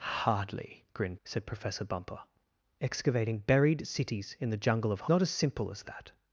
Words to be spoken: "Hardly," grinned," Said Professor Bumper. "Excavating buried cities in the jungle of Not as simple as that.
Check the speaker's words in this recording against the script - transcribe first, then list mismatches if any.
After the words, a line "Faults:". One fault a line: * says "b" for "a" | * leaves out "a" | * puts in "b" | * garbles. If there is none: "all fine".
"Hardly," grinned," Said Professor Bumper. "Excavating buried cities in the jungle of Not as simple as that.
Faults:
all fine